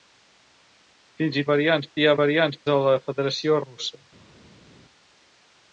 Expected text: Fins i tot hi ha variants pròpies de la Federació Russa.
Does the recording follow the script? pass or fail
fail